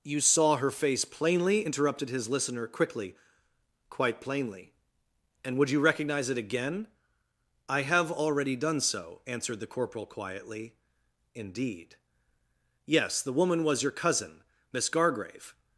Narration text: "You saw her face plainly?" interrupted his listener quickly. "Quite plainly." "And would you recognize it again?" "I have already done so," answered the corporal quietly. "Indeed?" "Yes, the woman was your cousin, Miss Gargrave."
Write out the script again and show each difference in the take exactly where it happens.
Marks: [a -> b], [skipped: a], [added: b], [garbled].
"You saw her face plainly?" interrupted his listener quickly. "Quite plainly." "And would you recognize it again?" "I have already done so," answered the corporal quietly. "Indeed?" "Yes, the woman was your cousin, Miss Gargrave."